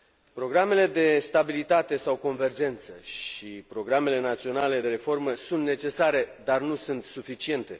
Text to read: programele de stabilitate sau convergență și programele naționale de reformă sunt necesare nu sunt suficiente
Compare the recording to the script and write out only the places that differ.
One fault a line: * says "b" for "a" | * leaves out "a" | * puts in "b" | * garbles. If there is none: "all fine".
* puts in "dar"